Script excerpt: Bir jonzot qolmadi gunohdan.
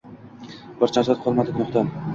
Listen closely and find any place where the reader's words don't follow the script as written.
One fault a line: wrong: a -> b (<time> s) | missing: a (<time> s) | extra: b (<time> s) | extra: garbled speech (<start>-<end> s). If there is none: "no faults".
no faults